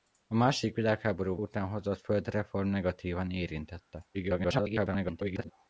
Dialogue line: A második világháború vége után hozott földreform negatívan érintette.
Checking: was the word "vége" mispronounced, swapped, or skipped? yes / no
yes